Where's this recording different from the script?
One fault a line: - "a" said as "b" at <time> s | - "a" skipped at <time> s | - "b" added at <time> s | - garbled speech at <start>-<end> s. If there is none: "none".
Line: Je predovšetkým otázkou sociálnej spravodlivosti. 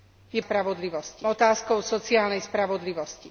- "predovšetkým" said as "spravodlivosti" at 0.4 s